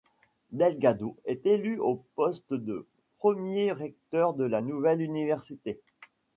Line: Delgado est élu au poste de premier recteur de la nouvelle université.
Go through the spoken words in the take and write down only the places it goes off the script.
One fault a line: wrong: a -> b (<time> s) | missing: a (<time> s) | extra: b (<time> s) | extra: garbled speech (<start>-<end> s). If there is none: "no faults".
no faults